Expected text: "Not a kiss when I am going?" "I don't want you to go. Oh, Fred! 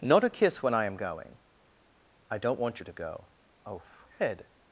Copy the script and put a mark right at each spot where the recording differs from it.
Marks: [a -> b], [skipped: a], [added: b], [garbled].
"Not a kiss when I am going?" "I don't want you to go. Oh, Fred!